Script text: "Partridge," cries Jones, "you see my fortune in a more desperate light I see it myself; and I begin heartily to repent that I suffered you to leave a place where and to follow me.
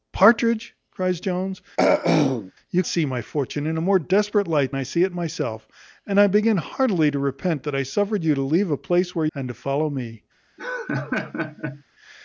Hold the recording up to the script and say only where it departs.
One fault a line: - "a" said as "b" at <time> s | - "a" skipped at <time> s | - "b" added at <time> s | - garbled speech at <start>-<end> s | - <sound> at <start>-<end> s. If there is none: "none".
- throat clearing at 1.8-2.5 s
- laugh at 10.6-11.8 s